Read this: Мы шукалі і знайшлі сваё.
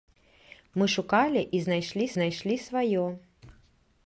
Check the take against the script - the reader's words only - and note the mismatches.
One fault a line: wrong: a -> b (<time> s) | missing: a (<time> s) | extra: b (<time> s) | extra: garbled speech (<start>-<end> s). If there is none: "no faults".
extra: знайшлі (2.1 s)